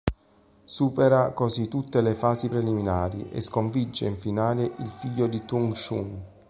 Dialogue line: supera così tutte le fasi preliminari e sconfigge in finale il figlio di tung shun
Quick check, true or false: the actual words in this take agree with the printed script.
true